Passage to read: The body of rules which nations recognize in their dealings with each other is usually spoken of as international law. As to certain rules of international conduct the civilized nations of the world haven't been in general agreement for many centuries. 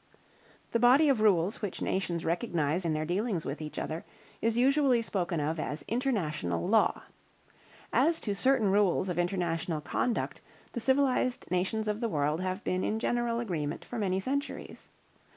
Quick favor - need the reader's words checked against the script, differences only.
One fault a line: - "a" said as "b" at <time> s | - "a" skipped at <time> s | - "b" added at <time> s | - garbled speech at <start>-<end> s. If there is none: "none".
- "haven't" said as "have" at 12.4 s